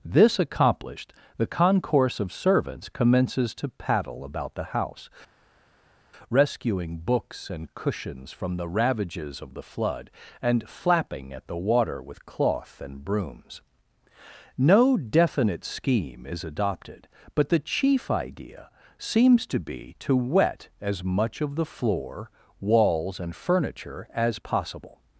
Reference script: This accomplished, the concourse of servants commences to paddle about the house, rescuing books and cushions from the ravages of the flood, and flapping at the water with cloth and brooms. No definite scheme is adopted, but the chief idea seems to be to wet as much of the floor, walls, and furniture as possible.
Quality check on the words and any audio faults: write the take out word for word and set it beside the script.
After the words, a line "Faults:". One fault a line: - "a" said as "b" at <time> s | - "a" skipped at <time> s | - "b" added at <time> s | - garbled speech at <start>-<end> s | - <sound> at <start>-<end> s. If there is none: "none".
This accomplished, the concourse of servants commences to paddle about the house, rescuing books and cushions from the ravages of the flood, and flapping at the water with cloth and brooms. No definite scheme is adopted, but the chief idea seems to be to wet as much of the floor, walls, and furniture as possible.
Faults:
none